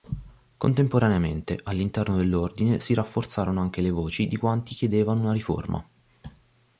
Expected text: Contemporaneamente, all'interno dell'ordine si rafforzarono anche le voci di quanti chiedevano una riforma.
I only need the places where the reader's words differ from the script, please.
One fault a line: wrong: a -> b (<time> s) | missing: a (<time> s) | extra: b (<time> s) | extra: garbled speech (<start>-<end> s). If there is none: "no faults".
no faults